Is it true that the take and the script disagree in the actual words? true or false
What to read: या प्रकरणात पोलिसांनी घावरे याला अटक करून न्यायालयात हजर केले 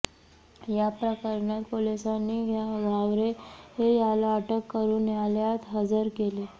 false